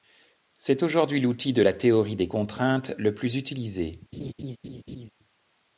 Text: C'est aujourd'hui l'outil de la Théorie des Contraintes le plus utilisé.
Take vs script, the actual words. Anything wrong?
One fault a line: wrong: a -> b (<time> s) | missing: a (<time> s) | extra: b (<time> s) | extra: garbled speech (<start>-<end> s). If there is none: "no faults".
no faults